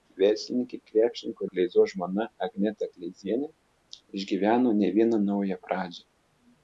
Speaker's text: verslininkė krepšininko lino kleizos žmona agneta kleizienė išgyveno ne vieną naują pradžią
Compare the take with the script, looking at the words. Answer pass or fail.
fail